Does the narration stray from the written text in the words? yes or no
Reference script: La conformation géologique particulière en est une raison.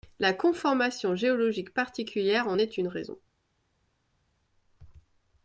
no